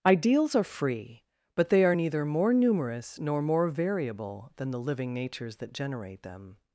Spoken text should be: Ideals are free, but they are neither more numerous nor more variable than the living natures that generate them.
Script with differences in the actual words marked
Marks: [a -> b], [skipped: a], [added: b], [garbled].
Ideals are free, but they are neither more numerous nor more variable than the living natures that generate them.